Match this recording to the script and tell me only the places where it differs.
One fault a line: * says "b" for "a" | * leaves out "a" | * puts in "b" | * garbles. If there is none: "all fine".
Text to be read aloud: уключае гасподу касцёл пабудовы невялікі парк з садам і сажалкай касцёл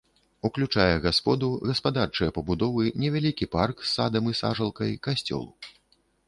* says "гаспадарчыя" for "касцёл"